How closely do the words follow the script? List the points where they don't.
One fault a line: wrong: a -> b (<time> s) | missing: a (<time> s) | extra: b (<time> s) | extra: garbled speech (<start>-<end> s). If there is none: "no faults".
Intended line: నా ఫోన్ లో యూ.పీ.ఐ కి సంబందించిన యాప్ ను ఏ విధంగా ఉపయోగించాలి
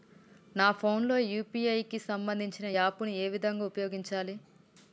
no faults